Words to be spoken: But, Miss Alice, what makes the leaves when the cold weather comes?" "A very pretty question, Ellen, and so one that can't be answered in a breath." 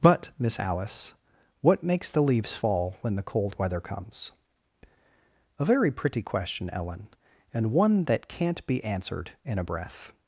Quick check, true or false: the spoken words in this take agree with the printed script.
false